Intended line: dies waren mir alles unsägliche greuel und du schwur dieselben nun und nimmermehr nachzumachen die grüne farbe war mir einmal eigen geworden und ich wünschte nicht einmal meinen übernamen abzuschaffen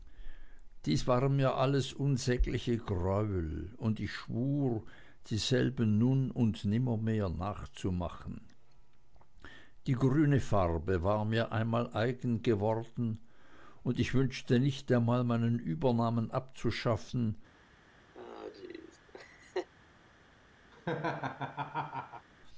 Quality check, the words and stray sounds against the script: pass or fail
fail